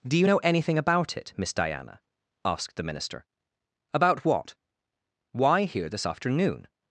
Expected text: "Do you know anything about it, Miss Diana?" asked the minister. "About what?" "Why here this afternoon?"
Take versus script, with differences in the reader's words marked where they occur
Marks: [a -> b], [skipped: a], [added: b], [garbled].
"Do you know anything about it, Miss Diana?" asked the minister. "About what?" "Why here this afternoon?"